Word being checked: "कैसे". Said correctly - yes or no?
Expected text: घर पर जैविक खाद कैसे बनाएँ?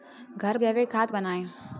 no